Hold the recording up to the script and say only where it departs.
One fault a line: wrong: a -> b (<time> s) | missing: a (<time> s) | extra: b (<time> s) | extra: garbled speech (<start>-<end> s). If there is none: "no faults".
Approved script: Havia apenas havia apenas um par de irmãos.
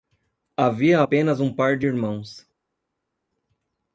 missing: havia apenas (1.4 s)